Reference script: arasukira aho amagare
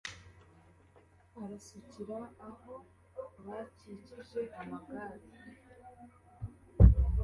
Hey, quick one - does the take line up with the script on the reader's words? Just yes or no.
no